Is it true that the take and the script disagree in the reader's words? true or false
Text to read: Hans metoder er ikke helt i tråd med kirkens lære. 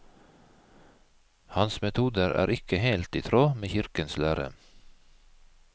false